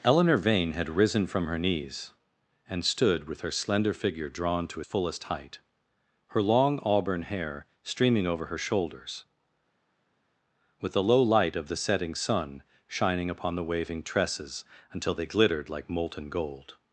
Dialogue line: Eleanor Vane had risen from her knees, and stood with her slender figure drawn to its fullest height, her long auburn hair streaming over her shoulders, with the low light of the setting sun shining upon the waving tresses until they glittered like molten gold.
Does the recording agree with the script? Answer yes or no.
no